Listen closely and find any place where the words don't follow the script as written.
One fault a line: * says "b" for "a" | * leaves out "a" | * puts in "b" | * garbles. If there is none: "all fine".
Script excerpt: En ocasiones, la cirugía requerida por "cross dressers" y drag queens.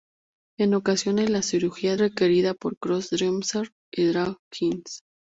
all fine